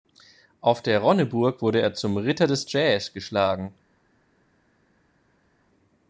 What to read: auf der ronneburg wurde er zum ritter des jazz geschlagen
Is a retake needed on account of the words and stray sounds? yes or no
no